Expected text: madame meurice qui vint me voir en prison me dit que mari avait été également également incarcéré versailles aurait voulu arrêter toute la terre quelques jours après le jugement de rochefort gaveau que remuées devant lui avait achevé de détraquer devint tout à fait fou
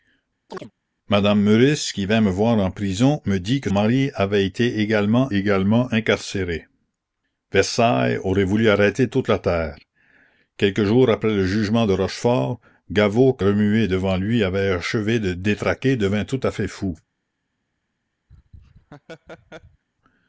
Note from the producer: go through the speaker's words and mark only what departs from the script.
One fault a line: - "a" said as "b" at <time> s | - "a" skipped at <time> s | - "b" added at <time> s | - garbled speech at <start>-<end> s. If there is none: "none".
none